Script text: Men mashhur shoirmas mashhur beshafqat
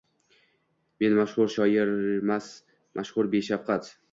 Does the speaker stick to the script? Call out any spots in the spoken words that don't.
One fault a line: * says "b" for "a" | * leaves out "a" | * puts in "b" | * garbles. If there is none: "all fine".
all fine